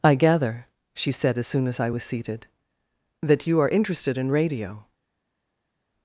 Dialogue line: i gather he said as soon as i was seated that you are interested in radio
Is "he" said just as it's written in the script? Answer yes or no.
no